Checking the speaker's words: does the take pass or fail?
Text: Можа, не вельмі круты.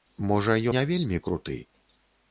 pass